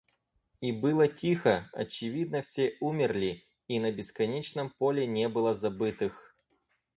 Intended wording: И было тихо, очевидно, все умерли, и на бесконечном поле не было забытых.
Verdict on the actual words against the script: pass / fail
pass